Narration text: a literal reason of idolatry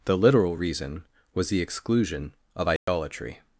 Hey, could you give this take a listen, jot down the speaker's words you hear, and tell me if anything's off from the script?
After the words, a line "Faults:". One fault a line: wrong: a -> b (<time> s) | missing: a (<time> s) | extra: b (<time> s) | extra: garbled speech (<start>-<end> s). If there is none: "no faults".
the literal reason was the exclusion of idolatry
Faults:
wrong: a -> the (0.1 s)
extra: was the exclusion (1.3 s)